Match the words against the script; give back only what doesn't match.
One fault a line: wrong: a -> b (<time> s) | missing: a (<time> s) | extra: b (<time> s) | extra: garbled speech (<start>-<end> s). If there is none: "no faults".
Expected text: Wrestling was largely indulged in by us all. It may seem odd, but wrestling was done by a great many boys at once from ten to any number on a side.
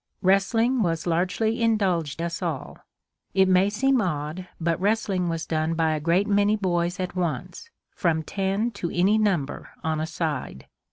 missing: in by (2.2 s)